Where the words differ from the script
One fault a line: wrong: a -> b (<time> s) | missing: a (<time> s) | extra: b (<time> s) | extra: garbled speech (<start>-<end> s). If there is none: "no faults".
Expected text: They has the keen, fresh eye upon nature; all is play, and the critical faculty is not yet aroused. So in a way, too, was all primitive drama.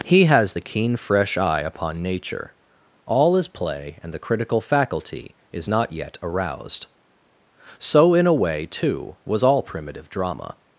wrong: They -> He (0.0 s)